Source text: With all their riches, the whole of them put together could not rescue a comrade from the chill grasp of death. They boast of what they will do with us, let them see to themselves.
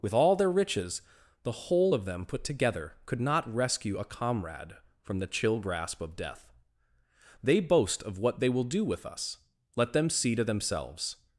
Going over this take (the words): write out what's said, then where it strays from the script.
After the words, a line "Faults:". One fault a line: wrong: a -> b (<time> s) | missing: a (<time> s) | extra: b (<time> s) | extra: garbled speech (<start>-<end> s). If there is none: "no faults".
With all their riches, the whole of them put together could not rescue a comrade from the chill grasp of death. They boast of what they will do with us, let them see to themselves.
Faults:
no faults